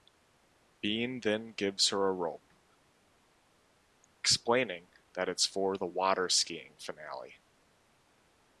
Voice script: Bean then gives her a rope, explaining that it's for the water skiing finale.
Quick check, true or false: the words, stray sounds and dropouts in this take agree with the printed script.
true